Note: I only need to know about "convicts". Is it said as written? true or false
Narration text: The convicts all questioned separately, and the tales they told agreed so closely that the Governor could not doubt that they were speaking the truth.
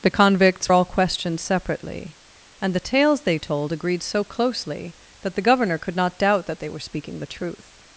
true